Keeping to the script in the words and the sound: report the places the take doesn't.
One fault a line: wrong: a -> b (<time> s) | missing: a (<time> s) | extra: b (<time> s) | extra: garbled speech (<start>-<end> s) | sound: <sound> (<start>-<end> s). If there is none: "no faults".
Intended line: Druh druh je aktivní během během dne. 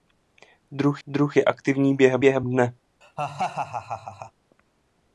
sound: laugh (3.0-4.3 s)